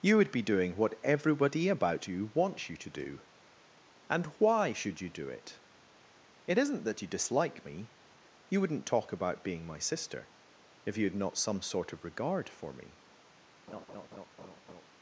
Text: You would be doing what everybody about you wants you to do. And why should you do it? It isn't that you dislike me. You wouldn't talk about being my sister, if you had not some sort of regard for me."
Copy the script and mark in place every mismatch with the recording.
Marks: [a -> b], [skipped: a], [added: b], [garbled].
You would be doing what everybody about you wants you to do. And why should you do it? It isn't that you dislike me. You wouldn't talk about being my sister, if you had not some sort of regard for me."